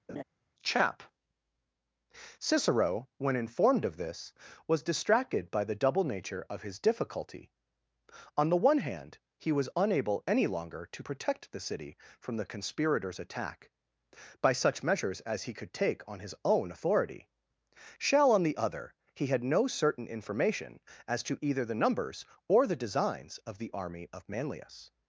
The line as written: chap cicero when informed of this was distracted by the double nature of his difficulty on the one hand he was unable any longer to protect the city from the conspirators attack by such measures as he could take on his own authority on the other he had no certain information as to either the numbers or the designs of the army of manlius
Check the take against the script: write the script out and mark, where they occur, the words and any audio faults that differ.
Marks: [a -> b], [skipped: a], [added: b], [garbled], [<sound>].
[laugh] chap cicero when informed of this was distracted by the double nature of his difficulty on the one hand he was unable any longer to protect the city from the conspirators attack by such measures as he could take on his own authority [added: shall] on the other he had no certain information as to either the numbers or the designs of the army of manlius